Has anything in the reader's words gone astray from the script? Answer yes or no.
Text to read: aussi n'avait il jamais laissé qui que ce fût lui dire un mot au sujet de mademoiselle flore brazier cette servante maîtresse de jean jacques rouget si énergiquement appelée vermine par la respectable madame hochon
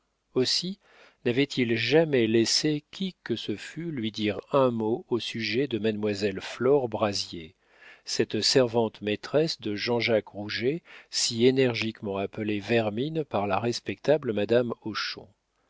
no